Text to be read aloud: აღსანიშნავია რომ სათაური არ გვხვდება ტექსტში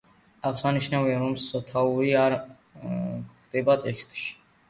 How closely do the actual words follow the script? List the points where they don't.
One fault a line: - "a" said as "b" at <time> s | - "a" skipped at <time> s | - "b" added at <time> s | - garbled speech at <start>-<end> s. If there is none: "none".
none